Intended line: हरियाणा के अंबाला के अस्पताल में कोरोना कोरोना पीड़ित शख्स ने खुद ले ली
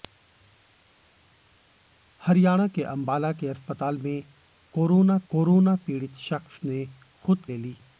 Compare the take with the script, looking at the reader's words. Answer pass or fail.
pass